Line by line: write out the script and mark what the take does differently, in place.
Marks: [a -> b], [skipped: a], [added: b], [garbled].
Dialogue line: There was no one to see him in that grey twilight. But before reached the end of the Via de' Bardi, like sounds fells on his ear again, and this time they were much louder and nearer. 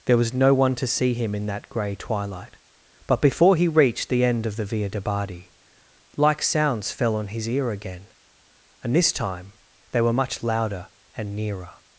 There was no one to see him in that grey twilight. But before [added: he] reached the end of the Via de' Bardi, like sounds [fells -> fell] on his ear again, and this time they were much louder and nearer.